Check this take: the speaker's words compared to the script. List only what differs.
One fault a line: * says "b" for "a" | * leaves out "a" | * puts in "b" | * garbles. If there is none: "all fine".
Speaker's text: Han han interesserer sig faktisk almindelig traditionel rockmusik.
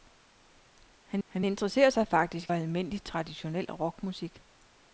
all fine